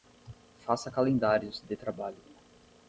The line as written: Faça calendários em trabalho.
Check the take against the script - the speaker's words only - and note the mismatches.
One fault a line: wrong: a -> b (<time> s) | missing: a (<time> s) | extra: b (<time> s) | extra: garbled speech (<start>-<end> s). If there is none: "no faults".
wrong: em -> de (1.6 s)